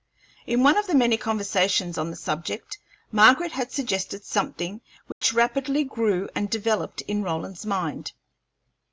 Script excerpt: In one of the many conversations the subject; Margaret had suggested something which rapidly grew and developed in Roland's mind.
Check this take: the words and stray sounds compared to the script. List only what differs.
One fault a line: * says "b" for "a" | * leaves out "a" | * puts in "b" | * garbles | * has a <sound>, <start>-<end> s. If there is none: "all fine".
* puts in "on"
* has a dropout, 5.1-5.2 s